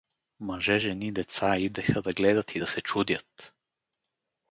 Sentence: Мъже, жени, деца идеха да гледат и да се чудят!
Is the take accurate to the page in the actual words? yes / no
yes